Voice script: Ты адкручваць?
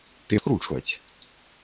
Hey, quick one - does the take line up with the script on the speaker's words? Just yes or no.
yes